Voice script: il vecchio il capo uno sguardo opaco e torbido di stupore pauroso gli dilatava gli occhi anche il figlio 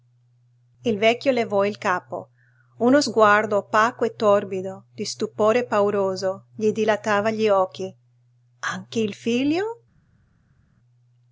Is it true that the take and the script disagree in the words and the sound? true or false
true